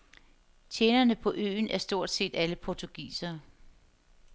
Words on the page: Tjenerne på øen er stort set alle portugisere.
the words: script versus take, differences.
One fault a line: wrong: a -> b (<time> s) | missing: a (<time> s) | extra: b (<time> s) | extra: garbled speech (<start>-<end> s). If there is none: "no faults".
no faults